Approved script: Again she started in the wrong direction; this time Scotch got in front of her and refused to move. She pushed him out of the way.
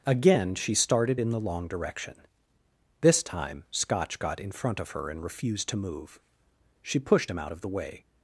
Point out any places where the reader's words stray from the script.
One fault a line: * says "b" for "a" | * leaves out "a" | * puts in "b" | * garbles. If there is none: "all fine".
* says "long" for "wrong"